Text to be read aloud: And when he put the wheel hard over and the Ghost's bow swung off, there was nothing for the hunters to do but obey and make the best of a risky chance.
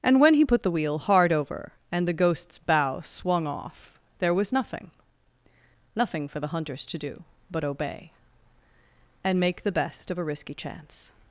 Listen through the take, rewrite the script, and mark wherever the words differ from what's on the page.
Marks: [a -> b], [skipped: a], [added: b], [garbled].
And when he put the wheel hard over and the Ghost's bow swung off, there was nothing [added: nothing] for the hunters to do but obey and make the best of a risky chance.